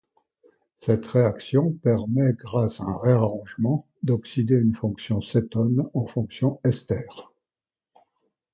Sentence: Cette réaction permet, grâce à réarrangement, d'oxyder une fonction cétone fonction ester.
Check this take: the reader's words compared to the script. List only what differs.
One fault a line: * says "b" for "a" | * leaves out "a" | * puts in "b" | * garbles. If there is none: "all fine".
* puts in "un"
* puts in "en"